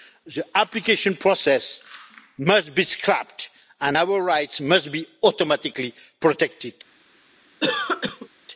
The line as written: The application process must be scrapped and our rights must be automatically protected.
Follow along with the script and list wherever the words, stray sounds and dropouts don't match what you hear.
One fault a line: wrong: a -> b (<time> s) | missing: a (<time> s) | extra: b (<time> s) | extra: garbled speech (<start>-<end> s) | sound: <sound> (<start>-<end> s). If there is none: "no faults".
sound: cough (7.6-8.3 s)